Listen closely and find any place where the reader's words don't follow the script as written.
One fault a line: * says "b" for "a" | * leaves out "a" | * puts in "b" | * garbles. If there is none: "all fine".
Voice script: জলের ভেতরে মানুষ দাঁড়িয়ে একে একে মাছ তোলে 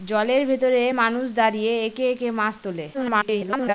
* garbles